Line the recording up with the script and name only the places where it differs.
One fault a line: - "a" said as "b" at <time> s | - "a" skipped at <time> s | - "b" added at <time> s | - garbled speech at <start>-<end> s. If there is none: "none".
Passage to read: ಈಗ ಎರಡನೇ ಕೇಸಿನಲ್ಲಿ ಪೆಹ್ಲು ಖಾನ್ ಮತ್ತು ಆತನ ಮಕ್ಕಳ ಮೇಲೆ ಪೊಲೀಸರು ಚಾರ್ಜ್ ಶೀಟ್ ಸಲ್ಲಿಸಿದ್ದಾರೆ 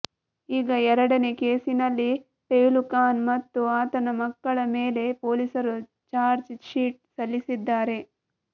none